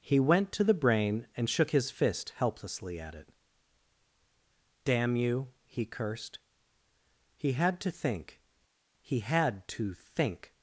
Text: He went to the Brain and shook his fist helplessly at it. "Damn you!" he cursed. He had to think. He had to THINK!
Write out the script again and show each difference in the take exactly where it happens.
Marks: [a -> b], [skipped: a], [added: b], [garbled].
He went to the Brain and shook his fist helplessly at it. "Damn you!" he cursed. He had to think. He had to THINK!